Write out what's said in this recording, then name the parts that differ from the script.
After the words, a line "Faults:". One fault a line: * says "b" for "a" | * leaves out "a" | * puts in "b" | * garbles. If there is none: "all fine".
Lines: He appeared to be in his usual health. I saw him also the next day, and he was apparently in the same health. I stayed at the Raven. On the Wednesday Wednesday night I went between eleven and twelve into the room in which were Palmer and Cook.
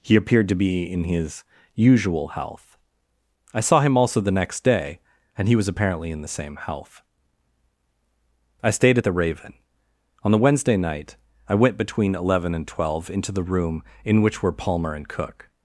He appeared to be in his usual health. I saw him also the next day, and he was apparently in the same health. I stayed at the Raven. On the Wednesday night I went between eleven and twelve into the room in which were Palmer and Cook.
Faults:
* leaves out "Wednesday"